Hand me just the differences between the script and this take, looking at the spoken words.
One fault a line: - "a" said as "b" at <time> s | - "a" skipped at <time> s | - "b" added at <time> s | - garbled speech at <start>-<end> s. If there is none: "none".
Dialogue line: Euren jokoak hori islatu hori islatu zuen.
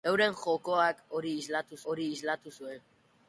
none